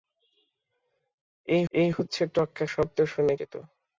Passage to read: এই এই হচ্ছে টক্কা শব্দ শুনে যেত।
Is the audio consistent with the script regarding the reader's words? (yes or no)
yes